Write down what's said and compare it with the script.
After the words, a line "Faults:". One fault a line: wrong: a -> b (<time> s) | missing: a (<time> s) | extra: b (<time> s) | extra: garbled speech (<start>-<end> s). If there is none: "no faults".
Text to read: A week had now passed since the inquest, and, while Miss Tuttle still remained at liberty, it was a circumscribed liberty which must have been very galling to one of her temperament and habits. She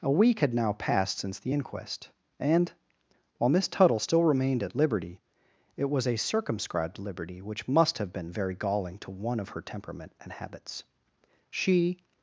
A week had now passed since the inquest, and, while Miss Tuttle still remained at liberty, it was a circumscribed liberty which must have been very galling to one of her temperament and habits. She
Faults:
no faults